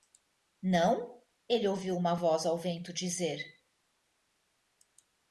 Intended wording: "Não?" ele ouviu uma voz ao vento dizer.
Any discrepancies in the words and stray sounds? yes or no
no